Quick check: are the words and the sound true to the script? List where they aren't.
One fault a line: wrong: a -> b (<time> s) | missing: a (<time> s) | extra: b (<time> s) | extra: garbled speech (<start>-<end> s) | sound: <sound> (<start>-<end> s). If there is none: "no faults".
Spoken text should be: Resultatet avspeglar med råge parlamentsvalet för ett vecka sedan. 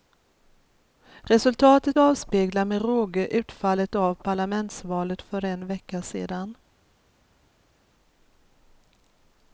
extra: utfallet av (3.3 s)
wrong: ett -> en (5.4 s)